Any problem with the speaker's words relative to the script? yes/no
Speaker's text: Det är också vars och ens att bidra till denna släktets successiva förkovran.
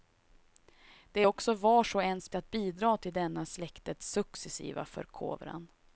no